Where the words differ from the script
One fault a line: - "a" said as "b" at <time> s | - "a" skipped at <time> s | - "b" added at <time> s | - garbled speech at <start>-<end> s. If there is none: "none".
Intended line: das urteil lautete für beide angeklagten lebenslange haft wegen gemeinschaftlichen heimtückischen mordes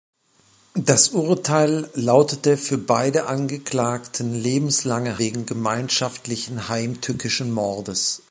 - "haft" skipped at 5.2 s